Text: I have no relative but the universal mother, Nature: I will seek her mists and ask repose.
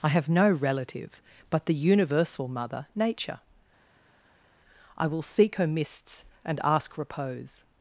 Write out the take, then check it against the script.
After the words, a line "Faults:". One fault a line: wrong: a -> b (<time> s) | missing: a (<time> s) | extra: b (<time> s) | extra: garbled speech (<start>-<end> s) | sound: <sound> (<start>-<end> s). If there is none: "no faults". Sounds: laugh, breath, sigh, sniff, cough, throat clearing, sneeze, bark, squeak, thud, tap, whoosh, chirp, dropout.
I have no relative but the universal mother, Nature: I will seek her mists and ask repose.
Faults:
no faults